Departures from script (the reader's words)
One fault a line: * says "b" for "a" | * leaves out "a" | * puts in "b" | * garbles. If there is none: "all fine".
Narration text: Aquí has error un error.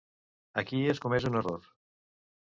* says "comès" for "error"